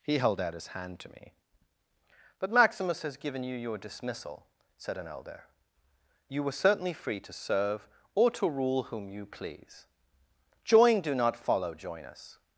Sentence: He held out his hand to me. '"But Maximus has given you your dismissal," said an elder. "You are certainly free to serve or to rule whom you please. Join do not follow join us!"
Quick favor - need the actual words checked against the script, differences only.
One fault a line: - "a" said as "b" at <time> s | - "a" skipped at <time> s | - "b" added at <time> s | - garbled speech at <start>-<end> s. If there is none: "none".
- "are" said as "were" at 6.4 s